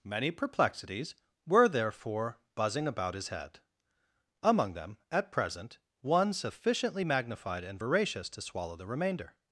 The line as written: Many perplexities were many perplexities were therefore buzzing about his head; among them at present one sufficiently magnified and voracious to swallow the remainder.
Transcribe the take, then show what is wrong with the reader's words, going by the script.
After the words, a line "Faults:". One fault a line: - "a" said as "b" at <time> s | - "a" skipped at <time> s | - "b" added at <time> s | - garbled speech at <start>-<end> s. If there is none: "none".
Many perplexities were therefore buzzing about his head; among them at present one sufficiently magnified and voracious to swallow the remainder.
Faults:
- "many perplexities were" skipped at 1.7 s